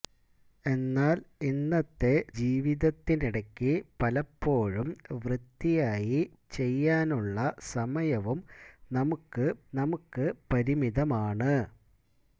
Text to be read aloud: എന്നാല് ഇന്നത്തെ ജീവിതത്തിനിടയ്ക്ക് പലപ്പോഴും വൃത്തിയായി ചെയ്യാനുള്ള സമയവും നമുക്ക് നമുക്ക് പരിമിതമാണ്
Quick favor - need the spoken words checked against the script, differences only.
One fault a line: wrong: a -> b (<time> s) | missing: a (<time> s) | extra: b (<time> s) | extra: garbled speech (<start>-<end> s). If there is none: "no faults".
no faults